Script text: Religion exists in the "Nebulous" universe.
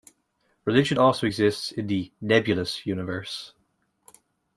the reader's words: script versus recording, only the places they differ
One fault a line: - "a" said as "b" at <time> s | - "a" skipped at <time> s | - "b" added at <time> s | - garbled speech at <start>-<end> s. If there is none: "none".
- "also" added at 0.9 s